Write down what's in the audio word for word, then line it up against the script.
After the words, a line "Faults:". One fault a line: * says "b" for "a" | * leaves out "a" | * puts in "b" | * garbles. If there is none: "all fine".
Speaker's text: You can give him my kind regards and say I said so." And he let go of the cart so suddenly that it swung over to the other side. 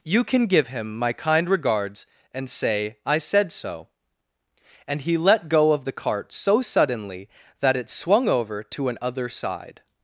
You can give him my kind regards and say I said so." And he let go of the cart so suddenly that it swung over to an other side.
Faults:
* says "an" for "the"